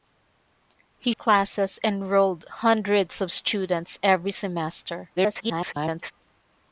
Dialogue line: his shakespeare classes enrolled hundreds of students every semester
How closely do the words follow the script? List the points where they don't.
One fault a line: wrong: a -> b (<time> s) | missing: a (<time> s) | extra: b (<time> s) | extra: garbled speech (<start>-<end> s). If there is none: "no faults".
missing: shakespeare (1.1 s)
extra: garbled speech (5.2-6.1 s)